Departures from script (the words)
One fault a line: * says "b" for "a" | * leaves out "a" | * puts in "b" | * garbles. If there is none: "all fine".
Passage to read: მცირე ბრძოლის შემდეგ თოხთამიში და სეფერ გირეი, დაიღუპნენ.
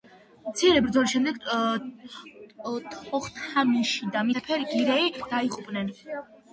all fine